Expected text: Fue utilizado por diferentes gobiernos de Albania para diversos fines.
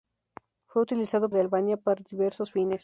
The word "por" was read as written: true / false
false